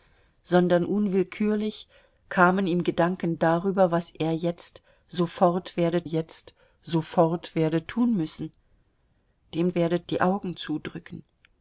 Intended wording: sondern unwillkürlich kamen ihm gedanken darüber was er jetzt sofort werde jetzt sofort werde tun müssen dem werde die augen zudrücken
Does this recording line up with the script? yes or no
yes